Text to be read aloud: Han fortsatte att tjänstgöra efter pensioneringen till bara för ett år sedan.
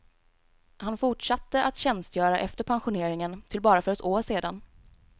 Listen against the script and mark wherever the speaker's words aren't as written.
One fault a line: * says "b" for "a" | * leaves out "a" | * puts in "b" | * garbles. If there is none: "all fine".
all fine